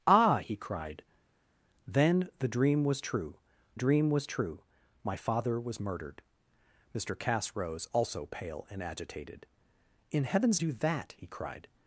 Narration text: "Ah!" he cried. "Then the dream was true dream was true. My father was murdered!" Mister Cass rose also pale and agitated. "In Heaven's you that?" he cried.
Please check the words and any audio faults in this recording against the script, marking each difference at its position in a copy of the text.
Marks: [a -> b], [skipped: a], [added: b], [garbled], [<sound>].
"Ah!" he cried. "Then the dream was true dream was true. My father was murdered!" Mister Cass rose also pale and agitated. "In Heaven's you that?" he cried.